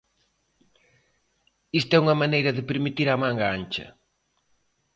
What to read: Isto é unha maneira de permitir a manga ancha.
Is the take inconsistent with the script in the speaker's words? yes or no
no